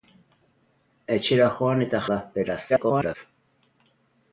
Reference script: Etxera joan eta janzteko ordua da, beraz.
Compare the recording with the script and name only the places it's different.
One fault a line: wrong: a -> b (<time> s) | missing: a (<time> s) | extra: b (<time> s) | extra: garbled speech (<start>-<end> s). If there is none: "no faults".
missing: janzteko ordua (2.0 s)
extra: garbled speech (2.7-3.2 s)